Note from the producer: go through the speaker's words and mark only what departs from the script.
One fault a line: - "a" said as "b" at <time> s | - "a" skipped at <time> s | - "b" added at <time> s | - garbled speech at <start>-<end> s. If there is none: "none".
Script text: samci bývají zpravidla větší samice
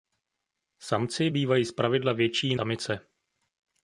none